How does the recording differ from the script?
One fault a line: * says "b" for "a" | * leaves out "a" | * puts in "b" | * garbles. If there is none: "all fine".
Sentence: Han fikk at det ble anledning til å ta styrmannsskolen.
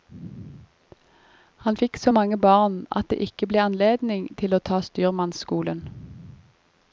* puts in "så mange barn"
* puts in "ikke"